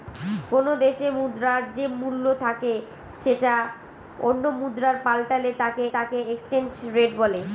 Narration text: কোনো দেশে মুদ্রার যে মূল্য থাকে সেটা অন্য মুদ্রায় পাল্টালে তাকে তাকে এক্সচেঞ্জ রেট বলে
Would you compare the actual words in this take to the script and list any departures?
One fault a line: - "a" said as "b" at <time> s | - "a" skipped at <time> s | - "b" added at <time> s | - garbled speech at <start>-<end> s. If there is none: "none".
none